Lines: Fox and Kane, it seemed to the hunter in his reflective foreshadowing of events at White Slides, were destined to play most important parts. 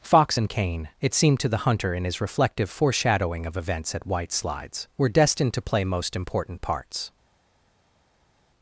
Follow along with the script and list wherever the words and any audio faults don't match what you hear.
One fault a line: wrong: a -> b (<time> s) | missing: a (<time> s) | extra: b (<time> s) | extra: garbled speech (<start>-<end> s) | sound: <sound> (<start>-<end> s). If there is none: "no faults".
no faults